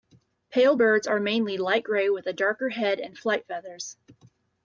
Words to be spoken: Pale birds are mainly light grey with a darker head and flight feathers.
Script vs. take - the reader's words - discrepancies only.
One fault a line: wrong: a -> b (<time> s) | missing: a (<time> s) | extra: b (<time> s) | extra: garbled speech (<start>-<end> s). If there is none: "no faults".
no faults